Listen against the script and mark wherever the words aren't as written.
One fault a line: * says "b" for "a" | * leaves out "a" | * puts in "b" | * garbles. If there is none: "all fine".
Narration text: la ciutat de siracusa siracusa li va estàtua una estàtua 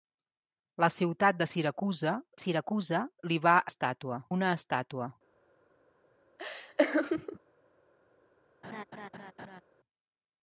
all fine